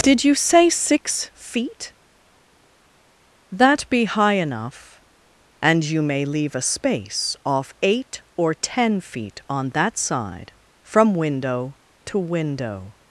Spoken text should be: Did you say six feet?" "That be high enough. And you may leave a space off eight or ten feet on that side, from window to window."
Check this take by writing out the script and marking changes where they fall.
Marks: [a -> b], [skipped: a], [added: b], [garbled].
Did you say six feet?" "That be high enough. And you may leave a space off eight or ten feet on that side, from window to window."